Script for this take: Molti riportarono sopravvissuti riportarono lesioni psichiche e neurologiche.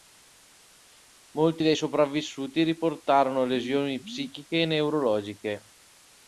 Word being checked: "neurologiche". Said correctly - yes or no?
yes